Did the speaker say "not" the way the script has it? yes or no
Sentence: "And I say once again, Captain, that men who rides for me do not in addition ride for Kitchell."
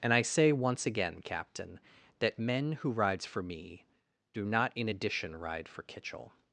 yes